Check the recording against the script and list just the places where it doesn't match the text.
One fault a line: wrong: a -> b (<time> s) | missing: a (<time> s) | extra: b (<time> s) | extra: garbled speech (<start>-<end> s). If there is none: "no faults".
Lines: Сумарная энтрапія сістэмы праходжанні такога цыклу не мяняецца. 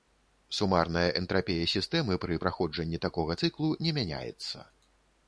extra: пры (2.2 s)